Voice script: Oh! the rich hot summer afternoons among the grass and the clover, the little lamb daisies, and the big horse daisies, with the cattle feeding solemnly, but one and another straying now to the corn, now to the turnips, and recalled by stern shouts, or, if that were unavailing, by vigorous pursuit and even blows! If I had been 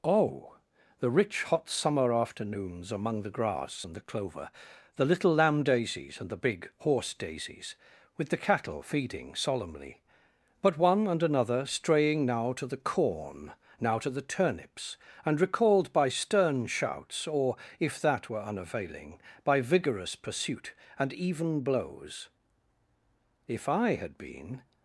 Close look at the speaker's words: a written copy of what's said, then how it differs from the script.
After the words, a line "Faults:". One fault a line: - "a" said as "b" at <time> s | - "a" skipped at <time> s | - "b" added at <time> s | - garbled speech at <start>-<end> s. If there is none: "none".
Oh! the rich hot summer afternoons among the grass and the clover, the little lamb daisies, and the big horse daisies, with the cattle feeding solemnly, but one and another straying now to the corn, now to the turnips, and recalled by stern shouts, or, if that were unavailing, by vigorous pursuit and even blows! If I had been
Faults:
none